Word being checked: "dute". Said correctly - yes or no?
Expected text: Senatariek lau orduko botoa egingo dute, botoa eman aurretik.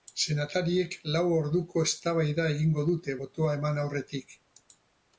yes